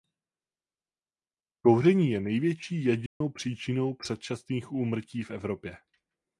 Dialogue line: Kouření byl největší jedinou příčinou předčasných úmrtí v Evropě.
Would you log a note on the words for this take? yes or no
yes